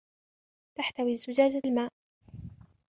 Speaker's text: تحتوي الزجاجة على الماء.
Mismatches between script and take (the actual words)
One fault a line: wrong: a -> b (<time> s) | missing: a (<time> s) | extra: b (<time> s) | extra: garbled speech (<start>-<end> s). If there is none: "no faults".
missing: على (1.6 s)